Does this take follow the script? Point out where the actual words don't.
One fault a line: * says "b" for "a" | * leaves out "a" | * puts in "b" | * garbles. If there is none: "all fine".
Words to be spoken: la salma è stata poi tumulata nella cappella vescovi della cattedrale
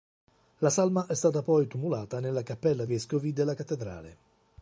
all fine